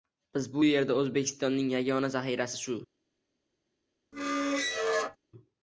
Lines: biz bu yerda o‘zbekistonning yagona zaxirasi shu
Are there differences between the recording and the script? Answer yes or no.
no